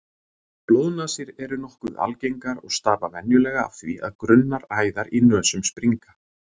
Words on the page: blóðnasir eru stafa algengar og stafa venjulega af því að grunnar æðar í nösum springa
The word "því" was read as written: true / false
true